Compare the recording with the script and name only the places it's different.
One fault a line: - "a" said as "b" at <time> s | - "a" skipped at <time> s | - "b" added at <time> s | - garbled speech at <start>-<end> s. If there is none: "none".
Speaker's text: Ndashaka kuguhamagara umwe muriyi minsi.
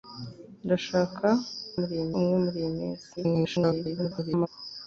- "kuguhamagara" said as "muriyi" at 1.8 s
- garbled speech at 3.2-4.5 s